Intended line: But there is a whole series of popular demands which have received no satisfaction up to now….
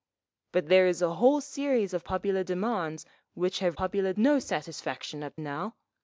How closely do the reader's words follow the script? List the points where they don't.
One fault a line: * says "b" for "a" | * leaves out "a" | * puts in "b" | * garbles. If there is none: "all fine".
* says "popular" for "received"
* leaves out "to"